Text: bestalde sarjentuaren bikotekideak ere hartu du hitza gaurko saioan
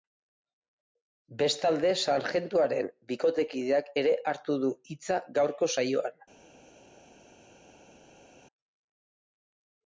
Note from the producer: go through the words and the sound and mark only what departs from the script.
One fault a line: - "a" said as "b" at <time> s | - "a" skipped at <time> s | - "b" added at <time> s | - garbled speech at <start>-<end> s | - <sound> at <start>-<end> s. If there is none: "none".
none